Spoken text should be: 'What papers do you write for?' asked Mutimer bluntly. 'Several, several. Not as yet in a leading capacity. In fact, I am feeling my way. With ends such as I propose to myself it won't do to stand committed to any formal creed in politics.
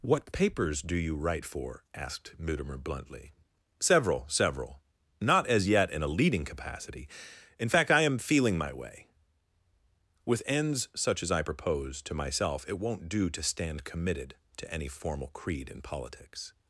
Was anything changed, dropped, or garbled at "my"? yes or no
no